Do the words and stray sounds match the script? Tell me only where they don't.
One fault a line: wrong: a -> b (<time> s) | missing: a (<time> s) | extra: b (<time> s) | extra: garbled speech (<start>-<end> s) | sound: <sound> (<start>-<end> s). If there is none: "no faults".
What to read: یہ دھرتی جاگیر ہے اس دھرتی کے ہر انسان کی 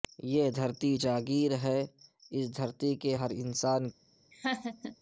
sound: laugh (4.3-5.0 s)